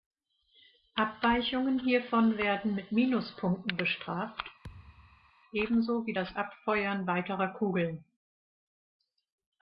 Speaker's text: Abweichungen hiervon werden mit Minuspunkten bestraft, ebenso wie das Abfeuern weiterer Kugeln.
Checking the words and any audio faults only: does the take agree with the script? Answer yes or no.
no